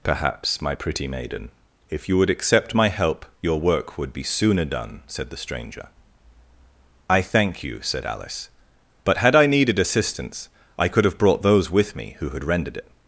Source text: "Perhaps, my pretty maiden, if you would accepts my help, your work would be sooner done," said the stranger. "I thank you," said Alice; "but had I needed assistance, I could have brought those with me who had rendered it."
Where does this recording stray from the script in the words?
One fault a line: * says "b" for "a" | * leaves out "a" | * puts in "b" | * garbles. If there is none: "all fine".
* says "accept" for "accepts"